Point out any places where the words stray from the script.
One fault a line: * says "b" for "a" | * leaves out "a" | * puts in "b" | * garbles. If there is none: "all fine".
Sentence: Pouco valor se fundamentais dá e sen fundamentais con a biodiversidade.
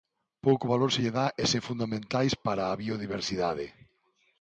* says "lle" for "fundamentais"
* says "para" for "con"